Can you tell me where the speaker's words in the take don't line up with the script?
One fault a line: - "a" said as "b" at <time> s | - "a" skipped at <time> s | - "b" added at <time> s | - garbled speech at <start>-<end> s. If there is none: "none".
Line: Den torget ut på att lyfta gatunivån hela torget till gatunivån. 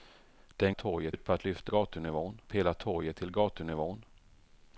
none